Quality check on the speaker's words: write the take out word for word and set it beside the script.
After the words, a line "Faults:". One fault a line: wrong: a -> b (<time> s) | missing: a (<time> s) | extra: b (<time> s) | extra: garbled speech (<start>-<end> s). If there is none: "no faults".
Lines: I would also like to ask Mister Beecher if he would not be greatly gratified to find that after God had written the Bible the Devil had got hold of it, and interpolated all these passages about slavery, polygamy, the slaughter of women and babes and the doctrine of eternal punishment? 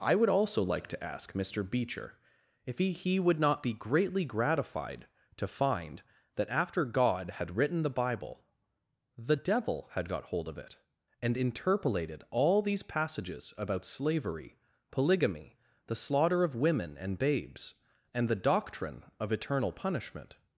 I would also like to ask Mister Beecher if he he would not be greatly gratified to find that after God had written the Bible the Devil had got hold of it, and interpolated all these passages about slavery, polygamy, the slaughter of women and babes and the doctrine of eternal punishment?
Faults:
extra: he (2.9 s)